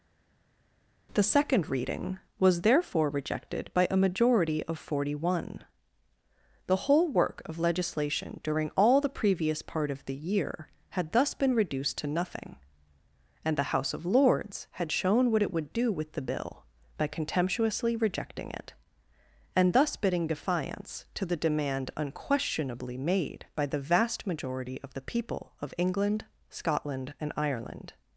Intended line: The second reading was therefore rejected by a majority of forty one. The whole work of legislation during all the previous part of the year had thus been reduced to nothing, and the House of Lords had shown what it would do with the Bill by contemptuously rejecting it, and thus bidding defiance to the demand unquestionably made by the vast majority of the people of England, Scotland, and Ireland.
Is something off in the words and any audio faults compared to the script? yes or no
no